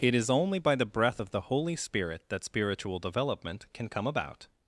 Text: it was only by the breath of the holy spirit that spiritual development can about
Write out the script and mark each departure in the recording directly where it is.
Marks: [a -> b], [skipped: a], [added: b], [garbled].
it [was -> is] only by the breath of the holy spirit that spiritual development can [added: come] about